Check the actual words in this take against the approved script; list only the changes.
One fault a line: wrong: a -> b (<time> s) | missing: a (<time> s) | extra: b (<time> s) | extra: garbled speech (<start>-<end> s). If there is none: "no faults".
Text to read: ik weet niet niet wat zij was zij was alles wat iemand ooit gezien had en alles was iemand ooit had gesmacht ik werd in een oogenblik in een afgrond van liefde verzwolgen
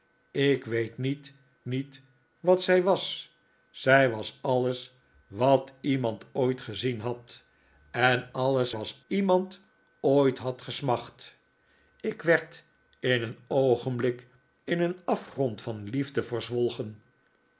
no faults